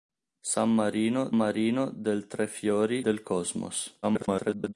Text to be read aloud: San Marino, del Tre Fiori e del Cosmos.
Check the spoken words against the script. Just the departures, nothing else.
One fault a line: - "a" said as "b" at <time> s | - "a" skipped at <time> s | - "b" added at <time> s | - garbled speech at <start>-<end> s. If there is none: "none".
- "Marino" added at 1.3 s
- "e" skipped at 3.0 s
- garbled speech at 4.0-4.7 s